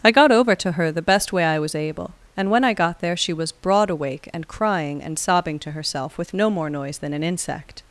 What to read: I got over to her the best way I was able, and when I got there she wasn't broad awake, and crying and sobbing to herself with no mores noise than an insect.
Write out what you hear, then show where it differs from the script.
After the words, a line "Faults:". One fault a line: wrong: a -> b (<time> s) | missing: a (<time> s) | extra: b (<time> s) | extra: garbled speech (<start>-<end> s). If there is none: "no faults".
I got over to her the best way I was able, and when I got there she was broad awake, and crying and sobbing to herself with no more noise than an insect.
Faults:
wrong: wasn't -> was (3.3 s)
wrong: mores -> more (6.5 s)